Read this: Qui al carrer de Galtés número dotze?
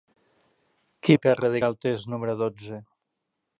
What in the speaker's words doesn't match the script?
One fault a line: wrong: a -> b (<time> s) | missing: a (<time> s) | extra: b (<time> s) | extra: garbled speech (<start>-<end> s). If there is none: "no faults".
no faults